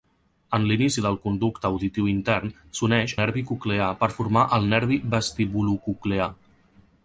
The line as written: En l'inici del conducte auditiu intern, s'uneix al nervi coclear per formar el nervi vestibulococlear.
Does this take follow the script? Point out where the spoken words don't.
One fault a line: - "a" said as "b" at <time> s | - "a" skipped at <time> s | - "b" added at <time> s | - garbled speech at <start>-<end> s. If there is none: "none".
- "al" skipped at 3.1 s